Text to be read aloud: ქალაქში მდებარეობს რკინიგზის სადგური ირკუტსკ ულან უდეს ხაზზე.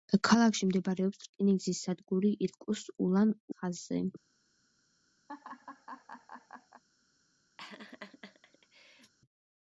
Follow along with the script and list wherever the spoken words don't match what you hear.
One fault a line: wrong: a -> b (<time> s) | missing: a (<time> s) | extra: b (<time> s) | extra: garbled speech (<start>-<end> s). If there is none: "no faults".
missing: უდეს (3.4 s)